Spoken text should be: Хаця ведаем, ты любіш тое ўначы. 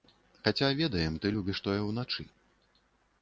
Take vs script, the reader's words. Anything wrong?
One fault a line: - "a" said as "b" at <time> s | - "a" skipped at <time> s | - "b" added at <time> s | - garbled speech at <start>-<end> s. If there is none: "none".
none